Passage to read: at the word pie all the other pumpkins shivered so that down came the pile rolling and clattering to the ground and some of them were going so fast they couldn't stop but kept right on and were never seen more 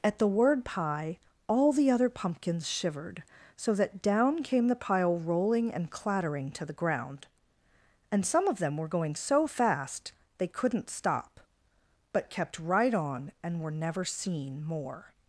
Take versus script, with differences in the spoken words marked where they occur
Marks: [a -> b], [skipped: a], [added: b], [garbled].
at the word pie all the other pumpkins shivered so that down came the pile rolling and clattering to the ground and some of them were going so fast they couldn't stop but kept right on and were never seen more